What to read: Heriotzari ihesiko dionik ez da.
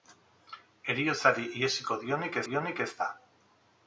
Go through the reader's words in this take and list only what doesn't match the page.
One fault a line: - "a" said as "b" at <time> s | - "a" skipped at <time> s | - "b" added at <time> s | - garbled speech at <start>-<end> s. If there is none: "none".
- "dionik" added at 2.5 s